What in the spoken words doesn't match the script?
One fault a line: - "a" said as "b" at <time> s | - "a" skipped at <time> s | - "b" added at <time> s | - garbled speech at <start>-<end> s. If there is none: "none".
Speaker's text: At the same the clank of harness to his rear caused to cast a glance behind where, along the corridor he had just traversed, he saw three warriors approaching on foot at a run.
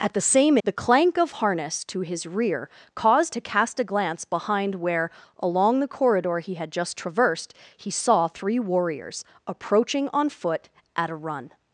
none